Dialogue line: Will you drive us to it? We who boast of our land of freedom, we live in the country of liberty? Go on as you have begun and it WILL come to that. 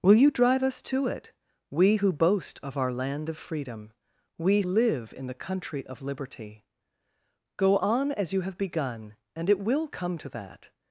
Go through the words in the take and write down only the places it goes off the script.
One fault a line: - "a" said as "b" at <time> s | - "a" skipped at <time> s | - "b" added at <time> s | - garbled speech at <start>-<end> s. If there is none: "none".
none